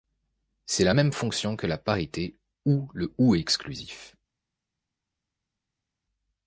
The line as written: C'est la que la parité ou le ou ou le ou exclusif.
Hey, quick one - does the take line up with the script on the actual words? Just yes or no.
no